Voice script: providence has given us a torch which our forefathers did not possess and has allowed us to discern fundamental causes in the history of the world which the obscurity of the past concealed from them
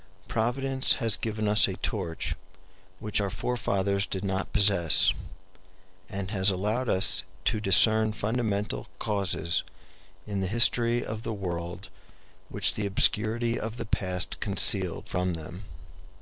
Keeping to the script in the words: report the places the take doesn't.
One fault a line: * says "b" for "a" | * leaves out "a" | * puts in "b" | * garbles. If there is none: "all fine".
all fine